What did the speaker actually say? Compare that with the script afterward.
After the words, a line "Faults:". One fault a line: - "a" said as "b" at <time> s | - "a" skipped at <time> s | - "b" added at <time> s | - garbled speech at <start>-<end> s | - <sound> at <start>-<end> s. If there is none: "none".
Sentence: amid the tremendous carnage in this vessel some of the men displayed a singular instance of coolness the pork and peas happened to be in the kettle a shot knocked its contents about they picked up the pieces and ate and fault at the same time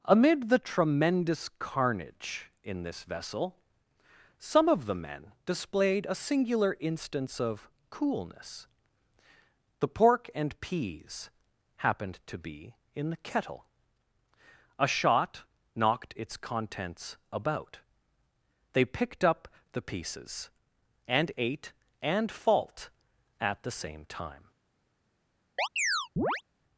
amid the tremendous carnage in this vessel some of the men displayed a singular instance of coolness the pork and peas happened to be in the kettle a shot knocked its contents about they picked up the pieces and ate and fault at the same time
Faults:
- chirp at 25.6-26.4 s